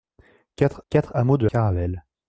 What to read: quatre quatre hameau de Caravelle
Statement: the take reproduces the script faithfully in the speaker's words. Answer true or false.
true